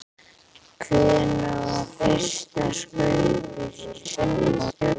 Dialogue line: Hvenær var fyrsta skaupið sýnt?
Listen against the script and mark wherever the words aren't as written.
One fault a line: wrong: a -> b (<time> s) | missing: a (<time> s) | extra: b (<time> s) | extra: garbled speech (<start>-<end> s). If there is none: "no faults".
extra: garbled speech (3.9-5.0 s)